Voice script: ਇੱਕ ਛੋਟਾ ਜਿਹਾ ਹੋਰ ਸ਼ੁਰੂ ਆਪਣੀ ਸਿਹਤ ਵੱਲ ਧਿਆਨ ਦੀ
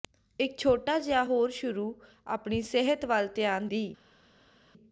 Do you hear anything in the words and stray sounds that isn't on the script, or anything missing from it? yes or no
no